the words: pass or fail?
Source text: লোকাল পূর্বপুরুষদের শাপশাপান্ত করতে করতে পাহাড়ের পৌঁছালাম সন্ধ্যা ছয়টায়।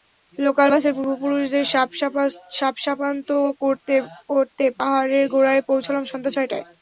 fail